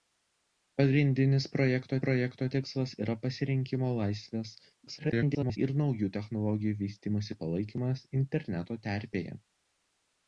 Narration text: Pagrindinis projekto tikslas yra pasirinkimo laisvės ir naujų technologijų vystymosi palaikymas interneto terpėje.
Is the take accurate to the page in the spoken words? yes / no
no